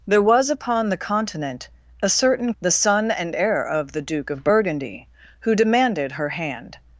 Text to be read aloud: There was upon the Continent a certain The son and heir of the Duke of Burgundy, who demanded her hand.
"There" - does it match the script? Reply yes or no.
yes